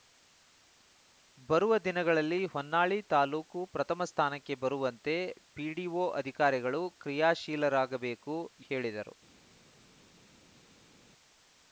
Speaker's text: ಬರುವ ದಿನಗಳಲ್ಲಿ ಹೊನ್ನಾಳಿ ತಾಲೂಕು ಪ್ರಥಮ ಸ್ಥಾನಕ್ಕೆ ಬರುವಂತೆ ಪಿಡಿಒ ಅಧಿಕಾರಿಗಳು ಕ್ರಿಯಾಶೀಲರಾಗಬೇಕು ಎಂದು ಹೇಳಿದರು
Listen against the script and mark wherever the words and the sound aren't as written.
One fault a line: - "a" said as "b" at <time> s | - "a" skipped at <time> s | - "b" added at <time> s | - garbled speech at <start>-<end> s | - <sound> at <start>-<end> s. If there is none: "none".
- "ಎಂದು" skipped at 8.4 s